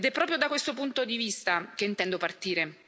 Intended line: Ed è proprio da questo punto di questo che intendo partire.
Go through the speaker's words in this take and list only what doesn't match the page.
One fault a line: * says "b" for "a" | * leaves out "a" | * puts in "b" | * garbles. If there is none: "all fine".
* says "vista" for "questo"